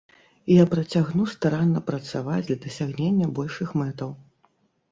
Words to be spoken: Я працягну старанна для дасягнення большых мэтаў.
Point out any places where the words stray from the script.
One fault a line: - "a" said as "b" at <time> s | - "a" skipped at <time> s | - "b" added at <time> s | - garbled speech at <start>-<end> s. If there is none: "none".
- "працаваць" added at 1.9 s